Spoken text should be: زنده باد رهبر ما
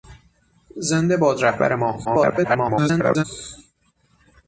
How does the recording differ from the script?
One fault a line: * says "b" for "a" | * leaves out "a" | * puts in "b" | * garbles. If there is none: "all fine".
* garbles